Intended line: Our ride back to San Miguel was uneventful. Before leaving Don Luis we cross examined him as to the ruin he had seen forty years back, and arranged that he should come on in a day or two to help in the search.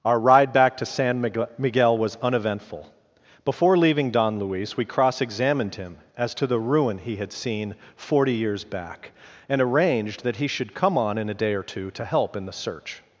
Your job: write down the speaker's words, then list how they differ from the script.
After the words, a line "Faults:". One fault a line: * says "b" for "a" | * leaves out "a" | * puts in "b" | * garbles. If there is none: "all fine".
Our ride back to San Miguel was uneventful. Before leaving Don Luis we cross examined him as to the ruin he had seen forty years back, and arranged that he should come on in a day or two to help in the search.
Faults:
all fine